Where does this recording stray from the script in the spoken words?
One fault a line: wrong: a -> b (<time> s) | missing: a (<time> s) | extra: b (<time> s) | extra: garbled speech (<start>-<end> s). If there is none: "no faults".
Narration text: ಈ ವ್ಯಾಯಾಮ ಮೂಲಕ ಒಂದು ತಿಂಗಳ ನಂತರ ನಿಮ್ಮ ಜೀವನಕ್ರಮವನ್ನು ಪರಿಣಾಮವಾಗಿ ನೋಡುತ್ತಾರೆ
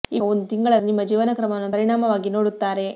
missing: ವ್ಯಾಯಾಮ ಮೂಲಕ (0.2 s)
missing: ನಂತರ (0.7 s)